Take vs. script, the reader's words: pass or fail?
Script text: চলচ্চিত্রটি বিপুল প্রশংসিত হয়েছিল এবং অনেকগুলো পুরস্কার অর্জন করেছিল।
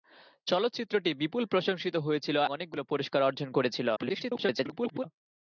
fail